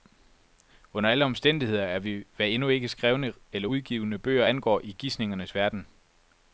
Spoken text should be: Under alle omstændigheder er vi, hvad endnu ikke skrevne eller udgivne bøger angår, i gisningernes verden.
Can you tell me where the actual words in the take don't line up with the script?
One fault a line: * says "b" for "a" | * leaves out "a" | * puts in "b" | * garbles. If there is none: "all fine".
all fine